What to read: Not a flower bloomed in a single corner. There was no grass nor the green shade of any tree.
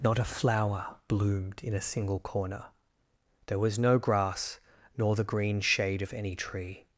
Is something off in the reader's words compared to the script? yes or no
no